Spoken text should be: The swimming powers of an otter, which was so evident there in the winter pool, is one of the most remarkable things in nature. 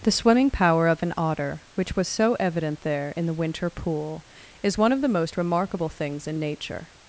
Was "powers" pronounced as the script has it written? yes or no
no